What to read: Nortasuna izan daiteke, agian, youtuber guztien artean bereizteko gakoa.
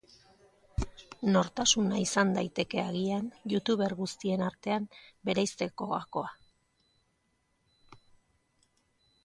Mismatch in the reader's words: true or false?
false